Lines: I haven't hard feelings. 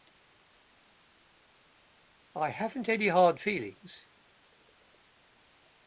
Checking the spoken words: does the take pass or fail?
fail